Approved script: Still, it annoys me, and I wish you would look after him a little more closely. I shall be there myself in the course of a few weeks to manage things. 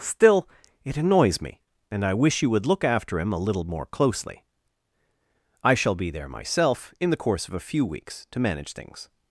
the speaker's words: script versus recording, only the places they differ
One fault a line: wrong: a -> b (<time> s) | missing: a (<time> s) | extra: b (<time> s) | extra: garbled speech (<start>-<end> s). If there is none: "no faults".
no faults